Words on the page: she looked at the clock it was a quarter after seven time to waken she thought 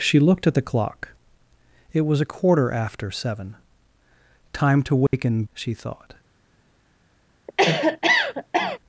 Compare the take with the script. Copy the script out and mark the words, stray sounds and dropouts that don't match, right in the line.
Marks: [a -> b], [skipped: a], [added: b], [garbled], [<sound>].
she looked at the clock it was a quarter after seven time to waken [dropout] she thought [cough]